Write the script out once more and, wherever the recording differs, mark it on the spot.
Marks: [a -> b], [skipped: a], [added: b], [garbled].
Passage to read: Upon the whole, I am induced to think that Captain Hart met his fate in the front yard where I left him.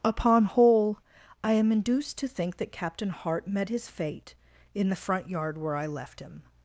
Upon [skipped: the] whole, I am induced to think that Captain Hart met his fate in the front yard where I left him.